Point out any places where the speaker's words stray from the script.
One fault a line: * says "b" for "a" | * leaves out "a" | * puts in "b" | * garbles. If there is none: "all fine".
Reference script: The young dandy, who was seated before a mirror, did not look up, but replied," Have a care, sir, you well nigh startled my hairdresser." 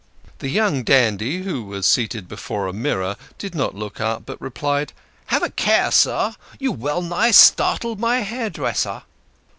all fine